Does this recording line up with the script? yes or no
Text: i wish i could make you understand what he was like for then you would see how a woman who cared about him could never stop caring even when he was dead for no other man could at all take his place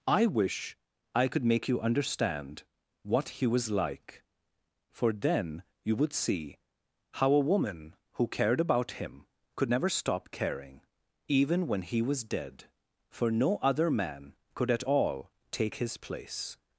yes